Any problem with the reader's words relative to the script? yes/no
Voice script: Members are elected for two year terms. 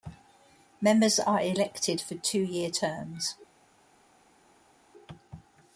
no